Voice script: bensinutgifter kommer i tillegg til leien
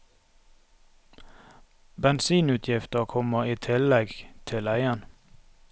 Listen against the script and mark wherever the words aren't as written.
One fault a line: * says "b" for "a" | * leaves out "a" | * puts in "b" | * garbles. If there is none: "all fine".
all fine